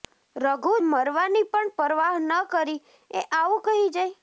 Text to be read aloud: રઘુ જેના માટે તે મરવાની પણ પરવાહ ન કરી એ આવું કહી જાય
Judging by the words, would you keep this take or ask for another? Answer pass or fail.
fail